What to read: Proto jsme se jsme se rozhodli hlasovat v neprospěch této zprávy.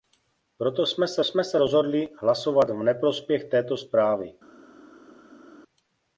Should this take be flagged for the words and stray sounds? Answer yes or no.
no